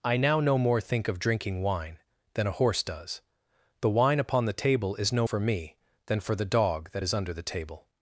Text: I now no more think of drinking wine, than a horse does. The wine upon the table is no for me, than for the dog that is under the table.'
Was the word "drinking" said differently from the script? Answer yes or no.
no